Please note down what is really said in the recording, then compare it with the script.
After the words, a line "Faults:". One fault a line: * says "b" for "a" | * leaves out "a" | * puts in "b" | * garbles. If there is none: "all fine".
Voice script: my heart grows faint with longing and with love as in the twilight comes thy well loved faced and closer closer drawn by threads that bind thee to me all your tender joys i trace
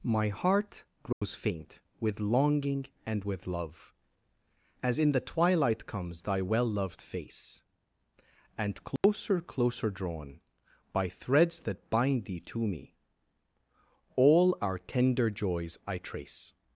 my heart grows faint with longing and with love as in the twilight comes thy well loved face and closer closer drawn by threads that bind thee to me all our tender joys i trace
Faults:
* says "face" for "faced"
* says "our" for "your"